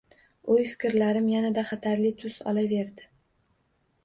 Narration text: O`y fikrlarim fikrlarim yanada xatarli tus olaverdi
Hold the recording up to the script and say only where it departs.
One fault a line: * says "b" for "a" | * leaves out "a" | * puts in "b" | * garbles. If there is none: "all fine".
* leaves out "fikrlarim"